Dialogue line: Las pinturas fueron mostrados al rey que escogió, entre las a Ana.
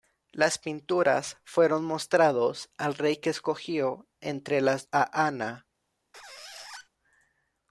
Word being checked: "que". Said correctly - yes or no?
yes